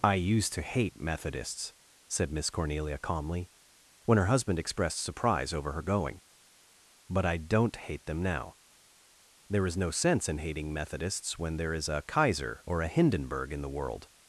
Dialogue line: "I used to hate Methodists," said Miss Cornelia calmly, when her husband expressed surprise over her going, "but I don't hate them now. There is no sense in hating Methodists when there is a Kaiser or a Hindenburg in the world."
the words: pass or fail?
pass